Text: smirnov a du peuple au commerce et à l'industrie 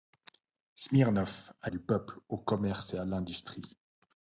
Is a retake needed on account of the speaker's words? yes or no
no